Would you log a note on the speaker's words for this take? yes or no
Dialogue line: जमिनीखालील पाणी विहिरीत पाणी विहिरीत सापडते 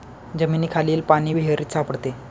yes